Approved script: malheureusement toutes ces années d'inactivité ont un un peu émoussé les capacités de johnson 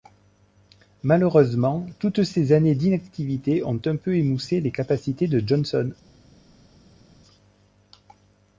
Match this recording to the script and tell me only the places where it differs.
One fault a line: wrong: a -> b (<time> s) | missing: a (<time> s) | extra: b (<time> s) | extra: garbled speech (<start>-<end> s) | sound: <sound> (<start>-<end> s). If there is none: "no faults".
missing: un (4.0 s)